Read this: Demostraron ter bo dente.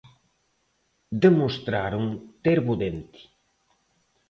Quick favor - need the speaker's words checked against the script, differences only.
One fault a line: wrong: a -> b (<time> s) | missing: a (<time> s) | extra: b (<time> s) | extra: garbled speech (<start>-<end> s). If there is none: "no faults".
no faults